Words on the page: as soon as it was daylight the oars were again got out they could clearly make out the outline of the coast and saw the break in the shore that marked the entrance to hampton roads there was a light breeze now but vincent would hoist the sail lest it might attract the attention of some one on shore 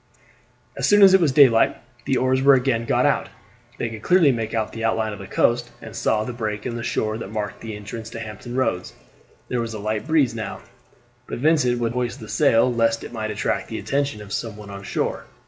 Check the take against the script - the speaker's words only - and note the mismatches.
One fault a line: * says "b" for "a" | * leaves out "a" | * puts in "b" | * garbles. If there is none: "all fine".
all fine